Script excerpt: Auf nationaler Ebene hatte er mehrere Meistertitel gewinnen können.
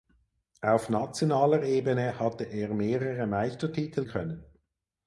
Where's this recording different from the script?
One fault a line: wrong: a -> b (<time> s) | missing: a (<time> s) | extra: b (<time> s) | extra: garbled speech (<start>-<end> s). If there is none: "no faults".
missing: gewinnen (4.0 s)